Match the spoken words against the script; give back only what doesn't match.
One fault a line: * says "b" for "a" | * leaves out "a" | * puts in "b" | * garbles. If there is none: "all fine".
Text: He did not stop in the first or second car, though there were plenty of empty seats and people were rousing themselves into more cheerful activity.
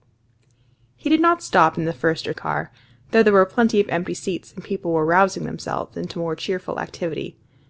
* leaves out "second"